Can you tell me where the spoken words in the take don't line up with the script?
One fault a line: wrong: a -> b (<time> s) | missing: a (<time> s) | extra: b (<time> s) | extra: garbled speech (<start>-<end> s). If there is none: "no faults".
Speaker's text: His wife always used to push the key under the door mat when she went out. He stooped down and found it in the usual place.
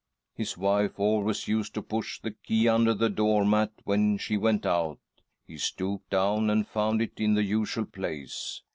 no faults